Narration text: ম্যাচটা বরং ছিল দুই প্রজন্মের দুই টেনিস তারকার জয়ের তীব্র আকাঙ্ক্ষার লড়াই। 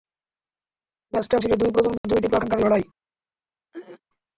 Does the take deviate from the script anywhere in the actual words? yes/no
yes